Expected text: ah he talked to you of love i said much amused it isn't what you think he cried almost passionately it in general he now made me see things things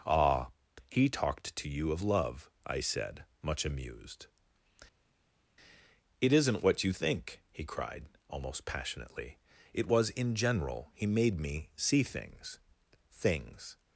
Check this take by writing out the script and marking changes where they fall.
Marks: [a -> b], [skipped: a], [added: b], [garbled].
ah he talked to you of love i said much amused it isn't what you think he cried almost passionately it [added: was] in general he [skipped: now] made me see things things